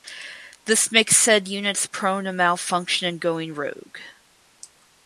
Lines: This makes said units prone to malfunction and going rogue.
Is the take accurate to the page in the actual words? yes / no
yes